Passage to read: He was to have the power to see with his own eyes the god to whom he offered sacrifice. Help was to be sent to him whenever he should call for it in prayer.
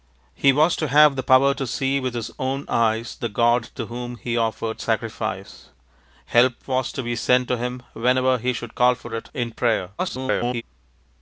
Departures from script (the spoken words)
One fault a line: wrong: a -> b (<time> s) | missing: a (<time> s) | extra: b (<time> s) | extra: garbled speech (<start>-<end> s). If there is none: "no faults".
extra: garbled speech (10.0-10.6 s)